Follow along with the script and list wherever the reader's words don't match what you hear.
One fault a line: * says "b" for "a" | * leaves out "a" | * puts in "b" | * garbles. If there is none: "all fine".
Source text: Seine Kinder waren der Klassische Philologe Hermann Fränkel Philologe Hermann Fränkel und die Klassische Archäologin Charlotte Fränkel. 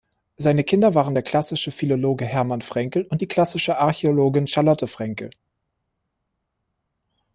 * leaves out "Philologe Hermann Fränkel"